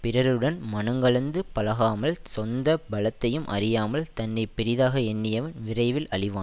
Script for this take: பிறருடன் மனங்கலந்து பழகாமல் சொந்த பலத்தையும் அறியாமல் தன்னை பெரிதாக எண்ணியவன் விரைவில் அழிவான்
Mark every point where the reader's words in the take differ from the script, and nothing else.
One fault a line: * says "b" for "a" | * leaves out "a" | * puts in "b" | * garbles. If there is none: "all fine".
all fine